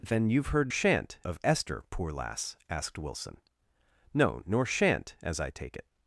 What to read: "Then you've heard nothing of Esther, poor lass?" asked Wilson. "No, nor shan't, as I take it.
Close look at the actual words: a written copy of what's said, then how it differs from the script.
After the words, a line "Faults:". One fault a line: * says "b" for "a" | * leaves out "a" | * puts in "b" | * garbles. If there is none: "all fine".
"Then you've heard shan't of Esther, poor lass?" asked Wilson. "No, nor shan't, as I take it.
Faults:
* says "shan't" for "nothing"